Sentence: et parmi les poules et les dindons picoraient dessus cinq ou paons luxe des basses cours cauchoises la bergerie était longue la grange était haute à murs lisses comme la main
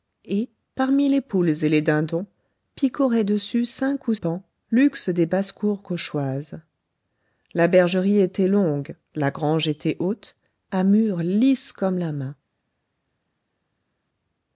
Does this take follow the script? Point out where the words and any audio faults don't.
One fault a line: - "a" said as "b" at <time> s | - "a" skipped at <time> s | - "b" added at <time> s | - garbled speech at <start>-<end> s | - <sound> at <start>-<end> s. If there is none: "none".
none